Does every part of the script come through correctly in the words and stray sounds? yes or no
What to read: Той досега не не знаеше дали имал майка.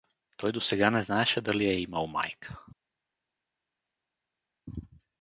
no